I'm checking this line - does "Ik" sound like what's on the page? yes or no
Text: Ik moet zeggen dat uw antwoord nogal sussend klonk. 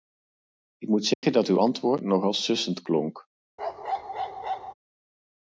yes